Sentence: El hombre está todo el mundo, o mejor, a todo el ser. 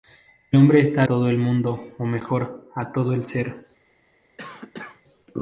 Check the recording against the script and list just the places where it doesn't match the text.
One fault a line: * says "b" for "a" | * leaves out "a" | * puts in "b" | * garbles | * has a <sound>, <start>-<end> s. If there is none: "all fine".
* has a cough, 4.4-5.0 s